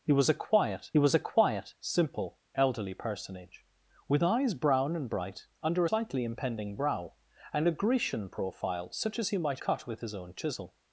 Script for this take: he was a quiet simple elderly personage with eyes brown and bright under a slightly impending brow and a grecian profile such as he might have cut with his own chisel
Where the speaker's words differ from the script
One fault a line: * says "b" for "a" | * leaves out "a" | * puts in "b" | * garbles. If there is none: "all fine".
* puts in "was a quiet"
* leaves out "a"
* leaves out "have"